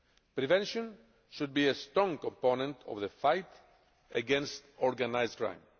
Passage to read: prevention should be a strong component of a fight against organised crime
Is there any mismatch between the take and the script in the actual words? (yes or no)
yes